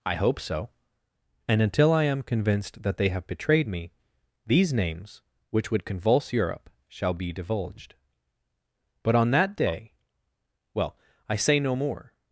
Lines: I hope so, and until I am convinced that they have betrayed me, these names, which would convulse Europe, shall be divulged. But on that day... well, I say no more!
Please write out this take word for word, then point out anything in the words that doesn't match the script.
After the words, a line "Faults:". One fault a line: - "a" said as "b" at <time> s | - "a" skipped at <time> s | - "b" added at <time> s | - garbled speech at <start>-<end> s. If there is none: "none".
I hope so, and until I am convinced that they have betrayed me, these names, which would convulse Europe, shall be divulged. But on that day... well, I say no more!
Faults:
none